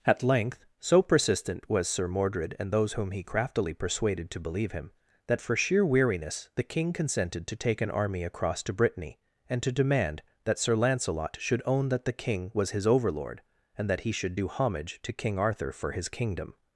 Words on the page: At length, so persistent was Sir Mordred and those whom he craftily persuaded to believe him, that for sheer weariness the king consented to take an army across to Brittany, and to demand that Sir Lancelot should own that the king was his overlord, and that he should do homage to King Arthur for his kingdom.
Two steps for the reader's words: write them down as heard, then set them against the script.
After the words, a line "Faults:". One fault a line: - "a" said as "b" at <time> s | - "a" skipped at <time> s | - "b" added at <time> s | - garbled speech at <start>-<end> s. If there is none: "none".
At length, so persistent was Sir Mordred and those whom he craftily persuaded to believe him, that for sheer weariness the king consented to take an army across to Brittany, and to demand that Sir Lancelot should own that the king was his overlord, and that he should do homage to King Arthur for his kingdom.
Faults:
none